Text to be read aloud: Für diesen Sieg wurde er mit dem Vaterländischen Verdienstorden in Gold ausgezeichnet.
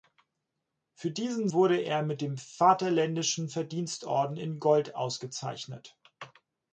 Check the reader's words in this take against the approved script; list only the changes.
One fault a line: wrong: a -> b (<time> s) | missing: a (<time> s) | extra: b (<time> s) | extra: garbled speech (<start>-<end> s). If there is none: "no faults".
missing: Sieg (1.5 s)